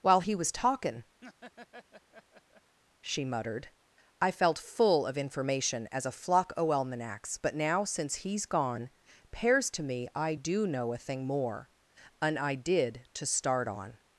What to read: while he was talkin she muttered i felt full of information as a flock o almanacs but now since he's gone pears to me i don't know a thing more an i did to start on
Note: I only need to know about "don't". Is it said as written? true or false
false